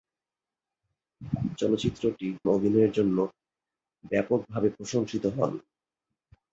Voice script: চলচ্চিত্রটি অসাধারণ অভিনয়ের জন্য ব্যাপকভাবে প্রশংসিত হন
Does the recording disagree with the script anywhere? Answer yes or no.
yes